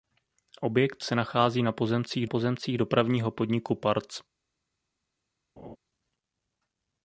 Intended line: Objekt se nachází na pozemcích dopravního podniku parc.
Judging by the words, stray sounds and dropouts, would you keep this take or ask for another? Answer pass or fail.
fail